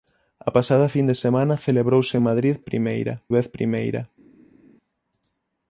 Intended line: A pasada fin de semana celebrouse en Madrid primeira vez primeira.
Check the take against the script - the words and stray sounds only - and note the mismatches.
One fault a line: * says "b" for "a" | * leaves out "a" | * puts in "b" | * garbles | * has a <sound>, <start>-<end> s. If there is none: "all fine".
all fine